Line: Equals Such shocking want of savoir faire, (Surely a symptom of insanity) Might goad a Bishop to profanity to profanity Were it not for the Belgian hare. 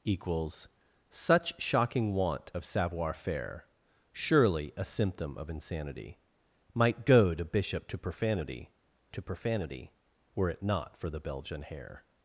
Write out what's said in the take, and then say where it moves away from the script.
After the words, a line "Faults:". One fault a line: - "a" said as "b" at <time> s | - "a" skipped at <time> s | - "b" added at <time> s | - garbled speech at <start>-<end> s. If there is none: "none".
Equals Such shocking want of savoir faire, (Surely a symptom of insanity) Might goad a Bishop to profanity to profanity Were it not for the Belgian hare.
Faults:
none